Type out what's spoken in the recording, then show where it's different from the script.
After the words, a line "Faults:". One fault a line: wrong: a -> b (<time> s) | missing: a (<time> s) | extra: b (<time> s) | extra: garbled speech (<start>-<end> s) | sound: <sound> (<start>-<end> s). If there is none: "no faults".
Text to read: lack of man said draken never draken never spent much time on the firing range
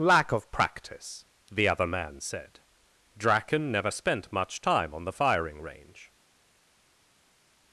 lack of practice the other man said draken never spent much time on the firing range
Faults:
extra: practice the other (0.5 s)
missing: draken never (3.9 s)